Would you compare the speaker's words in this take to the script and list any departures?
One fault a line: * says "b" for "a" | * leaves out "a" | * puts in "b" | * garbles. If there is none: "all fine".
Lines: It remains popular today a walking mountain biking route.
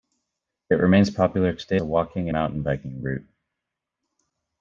all fine